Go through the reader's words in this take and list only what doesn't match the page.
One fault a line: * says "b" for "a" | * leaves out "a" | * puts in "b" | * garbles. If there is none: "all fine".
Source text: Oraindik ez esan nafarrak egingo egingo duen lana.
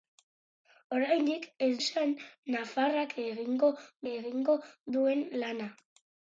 all fine